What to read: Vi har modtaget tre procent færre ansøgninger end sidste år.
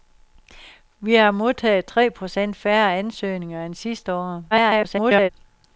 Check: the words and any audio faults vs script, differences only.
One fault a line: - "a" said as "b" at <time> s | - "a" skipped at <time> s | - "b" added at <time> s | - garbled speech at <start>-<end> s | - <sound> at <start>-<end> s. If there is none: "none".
- garbled speech at 4.5-5.3 s